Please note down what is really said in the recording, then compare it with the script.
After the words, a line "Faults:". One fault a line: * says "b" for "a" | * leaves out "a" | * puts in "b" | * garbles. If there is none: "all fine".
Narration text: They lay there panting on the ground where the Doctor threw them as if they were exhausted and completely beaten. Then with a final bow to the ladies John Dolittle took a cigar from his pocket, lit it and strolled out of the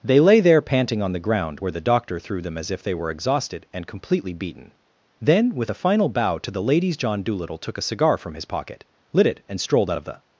They lay there panting on the ground where the Doctor threw them as if they were exhausted and completely beaten. Then with a final bow to the ladies John Dolittle took a cigar from his pocket, lit it and strolled out of the
Faults:
all fine